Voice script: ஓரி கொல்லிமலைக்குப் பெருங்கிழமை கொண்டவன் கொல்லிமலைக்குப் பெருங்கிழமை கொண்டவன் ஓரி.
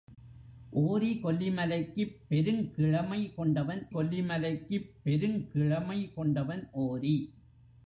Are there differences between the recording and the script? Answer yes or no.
no